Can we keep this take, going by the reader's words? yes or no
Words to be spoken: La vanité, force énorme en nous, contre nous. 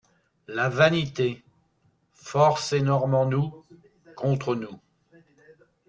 yes